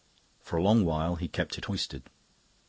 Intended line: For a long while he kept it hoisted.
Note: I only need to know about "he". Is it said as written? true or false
true